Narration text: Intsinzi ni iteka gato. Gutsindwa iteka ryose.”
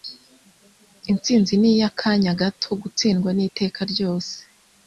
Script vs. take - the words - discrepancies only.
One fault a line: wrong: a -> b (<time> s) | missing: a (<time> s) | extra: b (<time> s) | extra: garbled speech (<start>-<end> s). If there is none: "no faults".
wrong: iteka -> iy'akanya (1.7 s)
extra: ni (3.3 s)